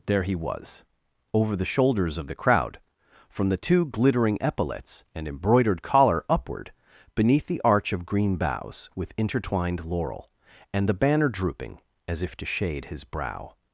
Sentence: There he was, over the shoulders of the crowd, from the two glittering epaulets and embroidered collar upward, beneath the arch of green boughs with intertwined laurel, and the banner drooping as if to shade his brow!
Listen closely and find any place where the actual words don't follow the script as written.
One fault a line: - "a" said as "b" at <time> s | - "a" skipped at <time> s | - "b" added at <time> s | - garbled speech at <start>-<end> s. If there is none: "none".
none